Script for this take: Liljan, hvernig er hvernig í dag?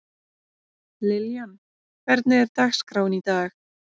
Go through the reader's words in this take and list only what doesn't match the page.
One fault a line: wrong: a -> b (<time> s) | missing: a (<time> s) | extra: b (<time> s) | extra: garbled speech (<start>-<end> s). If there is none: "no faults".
wrong: hvernig -> dagskráin (2.6 s)